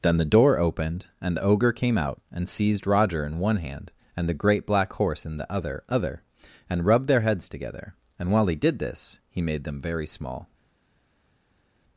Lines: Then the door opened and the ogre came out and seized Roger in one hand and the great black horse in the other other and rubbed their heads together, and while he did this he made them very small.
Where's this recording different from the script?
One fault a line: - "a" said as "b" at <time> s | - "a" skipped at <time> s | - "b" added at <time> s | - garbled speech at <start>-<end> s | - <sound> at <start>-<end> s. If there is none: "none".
none